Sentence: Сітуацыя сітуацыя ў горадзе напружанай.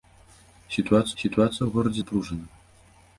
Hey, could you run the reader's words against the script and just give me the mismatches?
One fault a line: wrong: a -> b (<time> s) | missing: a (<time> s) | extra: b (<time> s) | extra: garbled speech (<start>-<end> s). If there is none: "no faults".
no faults